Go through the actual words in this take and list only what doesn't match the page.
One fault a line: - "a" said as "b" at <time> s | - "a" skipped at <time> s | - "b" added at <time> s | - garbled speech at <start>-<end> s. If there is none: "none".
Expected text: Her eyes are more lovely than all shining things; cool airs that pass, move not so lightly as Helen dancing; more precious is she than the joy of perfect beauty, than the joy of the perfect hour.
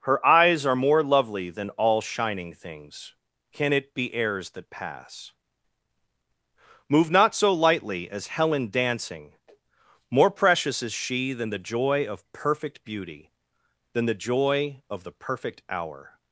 - "cool" said as "can it be" at 3.5 s